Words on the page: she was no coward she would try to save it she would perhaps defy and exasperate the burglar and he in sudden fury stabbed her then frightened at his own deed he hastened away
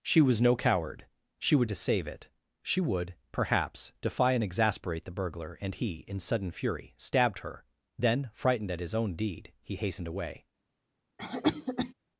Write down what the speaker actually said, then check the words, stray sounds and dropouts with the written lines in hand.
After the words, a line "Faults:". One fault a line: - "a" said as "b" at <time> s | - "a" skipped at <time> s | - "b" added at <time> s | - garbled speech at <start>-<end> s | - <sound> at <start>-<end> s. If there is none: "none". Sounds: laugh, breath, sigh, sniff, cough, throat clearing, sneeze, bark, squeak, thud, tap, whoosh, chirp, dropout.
she was no coward she would to save it she would perhaps defy and exasperate the burglar and he in sudden fury stabbed her then frightened at his own deed he hastened away
Faults:
- "try" skipped at 1.7 s
- cough at 11.2-11.9 s